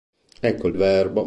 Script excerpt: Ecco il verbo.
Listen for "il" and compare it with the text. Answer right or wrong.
right